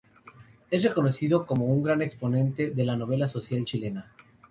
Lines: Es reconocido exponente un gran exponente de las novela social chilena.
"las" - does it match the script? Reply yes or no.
no